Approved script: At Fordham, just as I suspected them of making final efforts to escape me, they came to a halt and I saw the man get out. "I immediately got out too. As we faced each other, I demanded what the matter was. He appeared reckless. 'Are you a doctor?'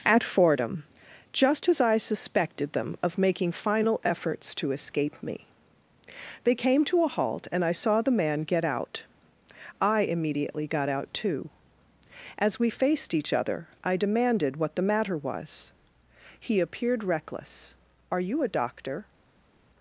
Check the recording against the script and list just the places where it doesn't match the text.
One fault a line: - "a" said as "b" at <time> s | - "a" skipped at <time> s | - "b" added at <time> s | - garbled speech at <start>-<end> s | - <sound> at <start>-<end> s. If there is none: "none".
none